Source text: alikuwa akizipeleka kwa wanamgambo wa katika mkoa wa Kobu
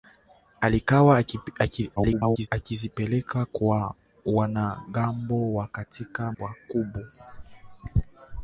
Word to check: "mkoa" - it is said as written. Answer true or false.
false